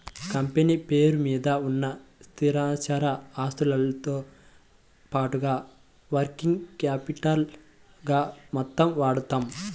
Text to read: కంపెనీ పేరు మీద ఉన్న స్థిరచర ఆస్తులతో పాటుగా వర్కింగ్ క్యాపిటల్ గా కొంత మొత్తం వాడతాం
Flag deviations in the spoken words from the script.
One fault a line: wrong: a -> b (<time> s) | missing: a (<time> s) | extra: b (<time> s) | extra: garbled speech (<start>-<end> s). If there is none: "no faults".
missing: కొంత (8.2 s)